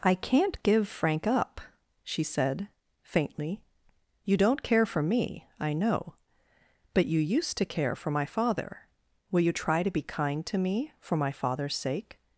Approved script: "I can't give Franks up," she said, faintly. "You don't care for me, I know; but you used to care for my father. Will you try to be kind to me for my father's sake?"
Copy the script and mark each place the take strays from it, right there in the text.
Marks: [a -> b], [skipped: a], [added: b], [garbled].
"I can't give [Franks -> Frank] up," she said, faintly. "You don't care for me, I know; but you used to care for my father. Will you try to be kind to me for my father's sake?"